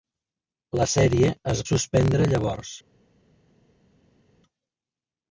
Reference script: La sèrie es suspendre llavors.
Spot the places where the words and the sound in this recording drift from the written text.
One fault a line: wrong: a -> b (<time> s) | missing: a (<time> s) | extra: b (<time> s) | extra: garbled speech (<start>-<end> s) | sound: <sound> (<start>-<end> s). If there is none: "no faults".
no faults